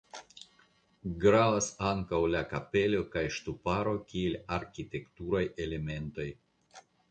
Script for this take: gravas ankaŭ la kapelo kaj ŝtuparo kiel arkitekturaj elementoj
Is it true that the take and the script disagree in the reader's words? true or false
false